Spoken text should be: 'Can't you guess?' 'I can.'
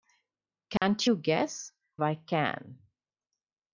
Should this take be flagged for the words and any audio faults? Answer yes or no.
yes